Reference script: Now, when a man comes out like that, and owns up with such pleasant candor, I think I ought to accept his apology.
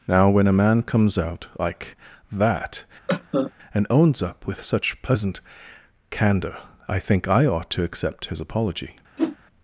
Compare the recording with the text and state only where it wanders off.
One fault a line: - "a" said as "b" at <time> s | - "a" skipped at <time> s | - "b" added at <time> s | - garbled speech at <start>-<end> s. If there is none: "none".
none